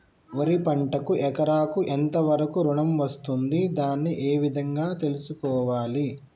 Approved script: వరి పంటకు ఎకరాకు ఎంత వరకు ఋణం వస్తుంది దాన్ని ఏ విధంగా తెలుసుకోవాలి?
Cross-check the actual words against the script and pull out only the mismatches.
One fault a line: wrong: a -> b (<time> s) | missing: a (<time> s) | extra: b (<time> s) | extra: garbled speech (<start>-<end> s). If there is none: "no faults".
no faults